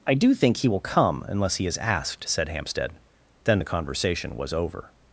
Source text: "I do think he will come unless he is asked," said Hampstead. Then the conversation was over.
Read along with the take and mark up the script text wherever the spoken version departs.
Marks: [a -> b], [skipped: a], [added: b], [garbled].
"I do think he will come unless he is asked," said Hampstead. Then the conversation was over.